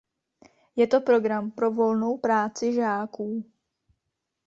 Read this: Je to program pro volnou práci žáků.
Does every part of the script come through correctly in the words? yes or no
yes